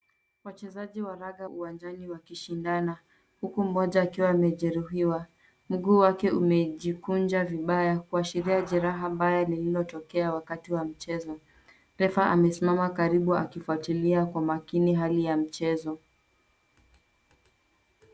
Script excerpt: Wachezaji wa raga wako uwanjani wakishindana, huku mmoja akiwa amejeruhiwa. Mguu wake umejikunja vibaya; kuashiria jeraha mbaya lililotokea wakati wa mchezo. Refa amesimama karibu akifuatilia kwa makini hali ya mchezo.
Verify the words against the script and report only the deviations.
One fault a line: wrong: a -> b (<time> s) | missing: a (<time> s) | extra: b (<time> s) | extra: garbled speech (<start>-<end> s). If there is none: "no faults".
missing: wako (1.5 s)